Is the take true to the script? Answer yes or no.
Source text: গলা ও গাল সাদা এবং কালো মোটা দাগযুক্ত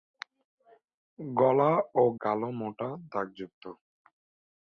no